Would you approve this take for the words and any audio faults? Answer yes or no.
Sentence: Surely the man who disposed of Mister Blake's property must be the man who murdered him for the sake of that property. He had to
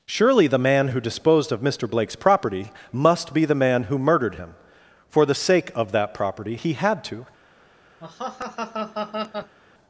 no